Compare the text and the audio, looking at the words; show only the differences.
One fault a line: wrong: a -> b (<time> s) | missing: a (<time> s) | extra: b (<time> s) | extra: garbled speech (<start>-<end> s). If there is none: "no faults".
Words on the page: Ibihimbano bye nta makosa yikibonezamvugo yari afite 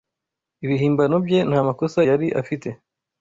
missing: yikibonezamvugo (2.0 s)